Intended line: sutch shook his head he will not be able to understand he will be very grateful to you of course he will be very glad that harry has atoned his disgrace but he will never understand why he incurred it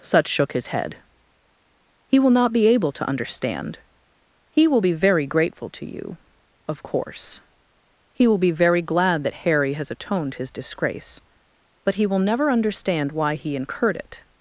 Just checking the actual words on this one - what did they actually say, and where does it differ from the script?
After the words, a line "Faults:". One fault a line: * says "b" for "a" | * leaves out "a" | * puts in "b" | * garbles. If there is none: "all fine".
sutch shook his head he will not be able to understand he will be very grateful to you of course he will be very glad that harry has atoned his disgrace but he will never understand why he incurred it
Faults:
all fine